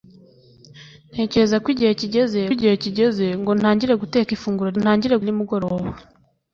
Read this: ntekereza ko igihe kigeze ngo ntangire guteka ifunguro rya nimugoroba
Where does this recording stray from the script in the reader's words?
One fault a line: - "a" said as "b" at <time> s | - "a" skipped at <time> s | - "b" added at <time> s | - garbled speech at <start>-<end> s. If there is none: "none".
- "igihe kigeze" added at 2.5 s
- "rya" said as "ntangire" at 4.8 s